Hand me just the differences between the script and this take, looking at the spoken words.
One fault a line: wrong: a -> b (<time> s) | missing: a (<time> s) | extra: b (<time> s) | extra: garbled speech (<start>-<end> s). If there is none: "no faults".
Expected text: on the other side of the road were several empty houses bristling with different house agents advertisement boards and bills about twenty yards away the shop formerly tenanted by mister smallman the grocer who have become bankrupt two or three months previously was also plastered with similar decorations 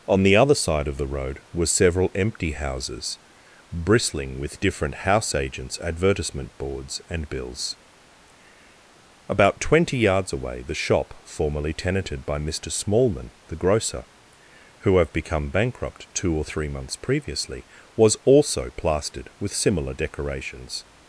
no faults